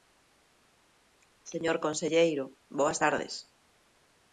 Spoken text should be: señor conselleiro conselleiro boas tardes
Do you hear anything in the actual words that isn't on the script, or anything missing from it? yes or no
yes